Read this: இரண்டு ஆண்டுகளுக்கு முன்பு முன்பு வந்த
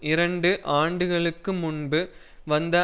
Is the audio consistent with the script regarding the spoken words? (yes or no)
no